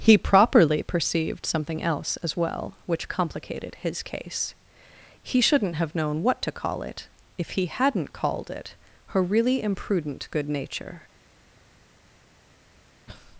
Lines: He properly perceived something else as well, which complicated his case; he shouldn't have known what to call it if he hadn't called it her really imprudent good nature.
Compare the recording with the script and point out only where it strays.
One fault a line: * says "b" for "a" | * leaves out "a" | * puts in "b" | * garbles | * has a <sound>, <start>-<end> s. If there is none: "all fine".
all fine